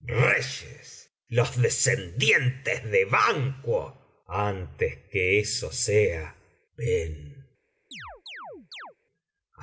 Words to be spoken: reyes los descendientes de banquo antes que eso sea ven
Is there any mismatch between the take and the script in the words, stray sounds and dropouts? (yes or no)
yes